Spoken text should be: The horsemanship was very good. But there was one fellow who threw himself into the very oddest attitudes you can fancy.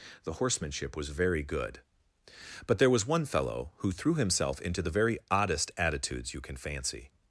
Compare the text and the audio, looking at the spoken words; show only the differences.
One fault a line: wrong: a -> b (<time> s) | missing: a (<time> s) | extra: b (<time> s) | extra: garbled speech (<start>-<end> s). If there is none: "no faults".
no faults